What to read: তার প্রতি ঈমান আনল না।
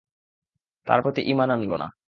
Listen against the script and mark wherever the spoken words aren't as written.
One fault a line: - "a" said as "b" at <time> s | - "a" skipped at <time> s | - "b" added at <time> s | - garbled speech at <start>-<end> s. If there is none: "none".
none